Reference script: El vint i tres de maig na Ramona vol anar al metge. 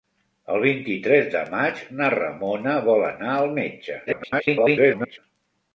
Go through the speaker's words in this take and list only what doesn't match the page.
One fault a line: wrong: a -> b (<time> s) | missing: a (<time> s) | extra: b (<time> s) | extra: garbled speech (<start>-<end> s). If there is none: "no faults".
extra: garbled speech (4.1-5.2 s)